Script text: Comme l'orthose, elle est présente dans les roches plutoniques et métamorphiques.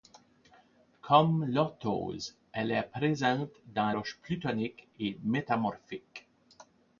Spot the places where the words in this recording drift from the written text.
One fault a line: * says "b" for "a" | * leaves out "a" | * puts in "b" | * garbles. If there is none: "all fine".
* leaves out "les"